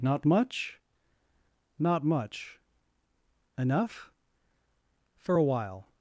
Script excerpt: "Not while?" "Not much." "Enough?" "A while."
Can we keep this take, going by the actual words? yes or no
no